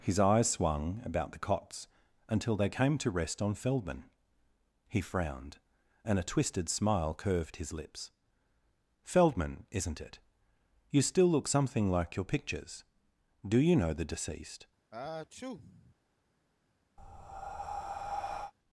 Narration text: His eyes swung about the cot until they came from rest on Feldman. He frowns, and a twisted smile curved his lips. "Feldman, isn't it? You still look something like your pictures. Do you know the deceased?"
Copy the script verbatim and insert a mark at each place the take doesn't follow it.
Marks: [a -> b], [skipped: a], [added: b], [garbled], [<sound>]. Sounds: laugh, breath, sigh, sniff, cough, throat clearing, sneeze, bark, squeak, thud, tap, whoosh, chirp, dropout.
His eyes swung about the [cot -> cots] until they came [from -> to] rest on Feldman. He [frowns, -> frowned] and a twisted smile curved his lips. "Feldman, isn't it? You still look something like your pictures. Do you know the deceased?" [sneeze] [breath]